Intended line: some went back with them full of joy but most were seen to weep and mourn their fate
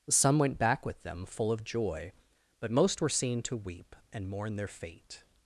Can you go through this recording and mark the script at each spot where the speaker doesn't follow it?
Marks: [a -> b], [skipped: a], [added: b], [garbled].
some went back with them full of joy but most were seen to weep and mourn their fate